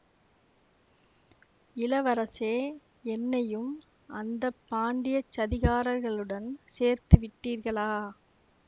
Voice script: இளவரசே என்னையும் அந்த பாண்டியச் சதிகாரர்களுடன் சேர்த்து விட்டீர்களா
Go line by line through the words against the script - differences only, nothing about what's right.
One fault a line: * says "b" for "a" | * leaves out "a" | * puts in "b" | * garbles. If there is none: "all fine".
all fine